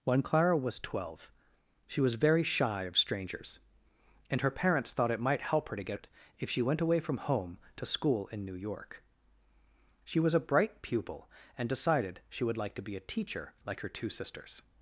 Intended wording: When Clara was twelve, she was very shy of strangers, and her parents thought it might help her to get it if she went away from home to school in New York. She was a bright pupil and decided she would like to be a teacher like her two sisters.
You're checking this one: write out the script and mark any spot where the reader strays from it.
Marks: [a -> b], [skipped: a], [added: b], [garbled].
When Clara was twelve, she was very shy of strangers, and her parents thought it might help her to get it if she went away from home to school in New York. She was a bright pupil and decided she would like to be a teacher like her two sisters.